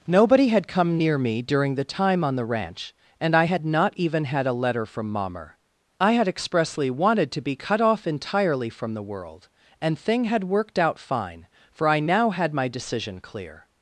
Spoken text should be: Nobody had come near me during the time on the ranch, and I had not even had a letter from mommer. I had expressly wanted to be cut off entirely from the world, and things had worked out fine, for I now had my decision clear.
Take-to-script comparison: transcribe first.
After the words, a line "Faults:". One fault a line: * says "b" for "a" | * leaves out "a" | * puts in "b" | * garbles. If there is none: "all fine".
Nobody had come near me during the time on the ranch, and I had not even had a letter from mommer. I had expressly wanted to be cut off entirely from the world, and thing had worked out fine, for I now had my decision clear.
Faults:
* says "thing" for "things"